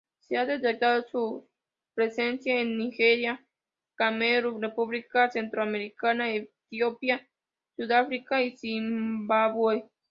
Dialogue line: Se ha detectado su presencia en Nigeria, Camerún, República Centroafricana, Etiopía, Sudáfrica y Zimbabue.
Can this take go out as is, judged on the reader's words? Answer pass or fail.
pass